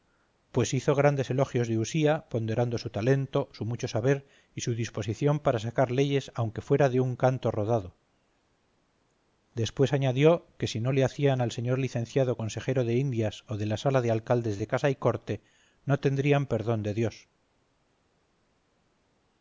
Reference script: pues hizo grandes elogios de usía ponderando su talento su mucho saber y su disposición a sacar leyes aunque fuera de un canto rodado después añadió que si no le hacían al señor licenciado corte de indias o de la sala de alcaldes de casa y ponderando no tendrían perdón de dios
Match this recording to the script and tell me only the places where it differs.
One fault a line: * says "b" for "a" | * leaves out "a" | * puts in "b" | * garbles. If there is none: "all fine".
* says "para" for "a"
* says "consejero" for "corte"
* says "corte" for "ponderando"